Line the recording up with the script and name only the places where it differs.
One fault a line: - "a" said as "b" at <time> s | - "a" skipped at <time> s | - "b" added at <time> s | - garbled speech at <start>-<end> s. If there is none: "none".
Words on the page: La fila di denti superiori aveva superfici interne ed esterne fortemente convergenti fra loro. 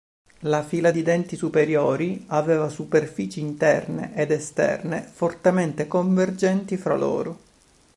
none